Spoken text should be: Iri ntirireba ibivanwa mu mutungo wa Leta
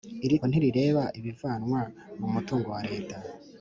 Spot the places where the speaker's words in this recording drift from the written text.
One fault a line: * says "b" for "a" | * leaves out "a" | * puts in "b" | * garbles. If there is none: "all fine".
all fine